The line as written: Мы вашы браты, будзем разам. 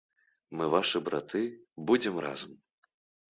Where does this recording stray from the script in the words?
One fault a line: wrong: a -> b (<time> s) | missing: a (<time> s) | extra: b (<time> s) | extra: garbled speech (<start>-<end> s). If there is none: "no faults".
no faults